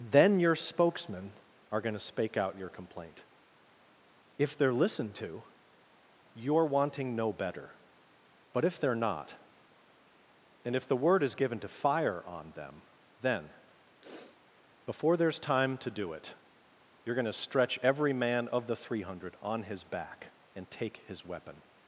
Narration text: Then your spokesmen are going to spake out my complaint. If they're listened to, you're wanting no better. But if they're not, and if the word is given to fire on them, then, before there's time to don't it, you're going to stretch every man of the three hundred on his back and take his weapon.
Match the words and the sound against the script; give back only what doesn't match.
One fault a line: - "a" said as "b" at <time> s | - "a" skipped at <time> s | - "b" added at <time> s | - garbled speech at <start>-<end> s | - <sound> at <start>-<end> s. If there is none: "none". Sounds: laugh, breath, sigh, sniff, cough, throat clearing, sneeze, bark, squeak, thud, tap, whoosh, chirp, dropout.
- "my" said as "your" at 2.6 s
- sniff at 14.0-14.4 s
- "don't" said as "do" at 15.9 s